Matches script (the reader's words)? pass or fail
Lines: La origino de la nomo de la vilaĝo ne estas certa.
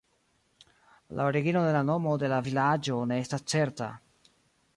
pass